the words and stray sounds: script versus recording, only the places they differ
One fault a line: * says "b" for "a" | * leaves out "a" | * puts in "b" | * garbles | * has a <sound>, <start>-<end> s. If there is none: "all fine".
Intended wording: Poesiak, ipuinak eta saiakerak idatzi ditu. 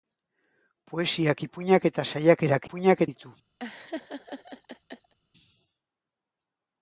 * says "ipuinak" for "idatzi"
* has a laugh, 3.6-5.1 s